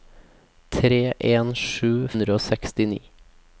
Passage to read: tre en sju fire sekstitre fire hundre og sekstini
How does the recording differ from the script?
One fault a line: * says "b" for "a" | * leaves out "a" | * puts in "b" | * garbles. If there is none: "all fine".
* leaves out "fire sekstitre fire"